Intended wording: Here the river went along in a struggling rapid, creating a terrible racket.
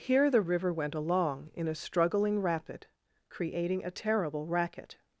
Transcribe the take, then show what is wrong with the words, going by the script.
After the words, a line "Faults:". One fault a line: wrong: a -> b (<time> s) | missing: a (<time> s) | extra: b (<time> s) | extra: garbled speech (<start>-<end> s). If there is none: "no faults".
Here the river went along in a struggling rapid, creating a terrible racket.
Faults:
no faults